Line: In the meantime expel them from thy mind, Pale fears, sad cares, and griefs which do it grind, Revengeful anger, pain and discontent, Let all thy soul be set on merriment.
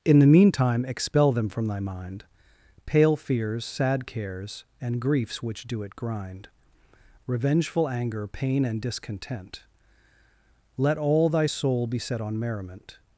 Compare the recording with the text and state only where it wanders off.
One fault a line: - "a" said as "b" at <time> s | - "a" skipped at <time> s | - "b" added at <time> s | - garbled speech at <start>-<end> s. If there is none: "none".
none